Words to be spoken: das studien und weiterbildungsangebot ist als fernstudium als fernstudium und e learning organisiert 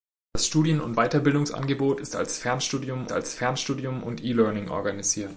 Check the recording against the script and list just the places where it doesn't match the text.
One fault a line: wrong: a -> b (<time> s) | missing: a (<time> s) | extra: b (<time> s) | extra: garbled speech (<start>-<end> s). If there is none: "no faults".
no faults